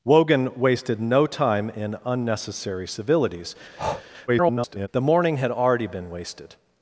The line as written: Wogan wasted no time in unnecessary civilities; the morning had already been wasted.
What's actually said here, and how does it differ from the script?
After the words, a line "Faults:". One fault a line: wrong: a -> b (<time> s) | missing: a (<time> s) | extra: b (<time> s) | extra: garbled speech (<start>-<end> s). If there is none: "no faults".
Wogan wasted no time in unnecessary civilities; [garbled] the morning had already been wasted.
Faults:
extra: garbled speech (4.3-4.9 s)